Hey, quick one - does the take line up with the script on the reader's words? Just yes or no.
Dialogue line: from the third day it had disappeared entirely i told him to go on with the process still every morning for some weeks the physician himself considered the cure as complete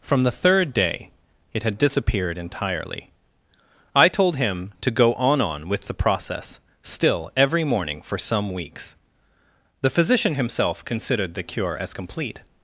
no